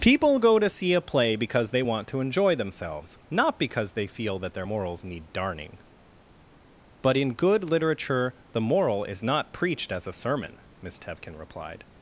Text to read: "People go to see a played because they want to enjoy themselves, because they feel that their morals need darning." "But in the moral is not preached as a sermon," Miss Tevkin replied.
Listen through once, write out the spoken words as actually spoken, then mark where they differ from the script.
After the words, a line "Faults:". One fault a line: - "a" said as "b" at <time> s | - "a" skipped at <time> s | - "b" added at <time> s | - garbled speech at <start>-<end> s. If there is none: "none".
"People go to see a play because they want to enjoy themselves, not because they feel that their morals need darning." "But in good literature the moral is not preached as a sermon," Miss Tevkin replied.
Faults:
- "played" said as "play" at 1.0 s
- "not" added at 3.3 s
- "good literature" added at 7.3 s